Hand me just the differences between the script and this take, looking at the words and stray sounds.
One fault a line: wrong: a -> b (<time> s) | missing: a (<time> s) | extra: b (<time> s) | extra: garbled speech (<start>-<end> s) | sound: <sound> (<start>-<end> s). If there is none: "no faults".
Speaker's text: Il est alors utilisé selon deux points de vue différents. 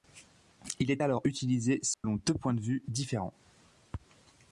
sound: dropout (1.9-2.0 s)